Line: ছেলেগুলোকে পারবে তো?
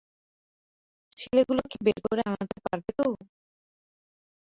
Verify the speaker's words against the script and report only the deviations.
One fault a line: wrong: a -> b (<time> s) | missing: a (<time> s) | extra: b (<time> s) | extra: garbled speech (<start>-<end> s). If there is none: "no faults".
extra: বের করে আনতে (1.9 s)